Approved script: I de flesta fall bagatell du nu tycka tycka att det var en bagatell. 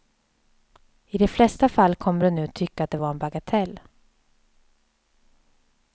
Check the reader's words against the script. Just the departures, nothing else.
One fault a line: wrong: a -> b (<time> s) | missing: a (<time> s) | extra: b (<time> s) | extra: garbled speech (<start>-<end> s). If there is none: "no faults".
wrong: bagatell -> kommer (1.9 s)
missing: tycka (2.8 s)